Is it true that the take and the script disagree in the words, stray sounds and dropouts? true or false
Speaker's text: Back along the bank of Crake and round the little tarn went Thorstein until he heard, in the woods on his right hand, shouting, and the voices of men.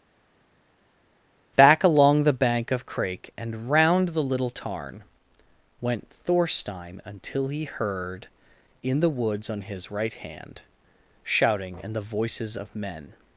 false